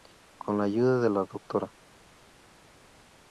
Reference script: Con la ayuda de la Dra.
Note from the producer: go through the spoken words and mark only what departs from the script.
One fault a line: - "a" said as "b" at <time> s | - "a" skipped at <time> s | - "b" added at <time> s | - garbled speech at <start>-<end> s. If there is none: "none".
none